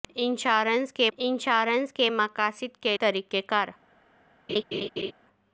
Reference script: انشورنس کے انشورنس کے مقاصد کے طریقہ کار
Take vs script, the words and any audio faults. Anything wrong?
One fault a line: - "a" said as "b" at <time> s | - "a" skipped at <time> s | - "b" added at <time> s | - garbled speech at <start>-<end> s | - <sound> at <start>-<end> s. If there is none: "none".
- laugh at 4.5-5.1 s